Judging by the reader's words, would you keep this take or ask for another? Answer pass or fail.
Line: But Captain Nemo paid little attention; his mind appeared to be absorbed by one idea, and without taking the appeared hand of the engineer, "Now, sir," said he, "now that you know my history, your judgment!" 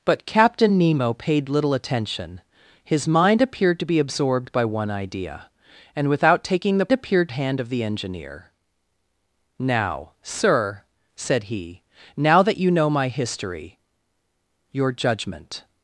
pass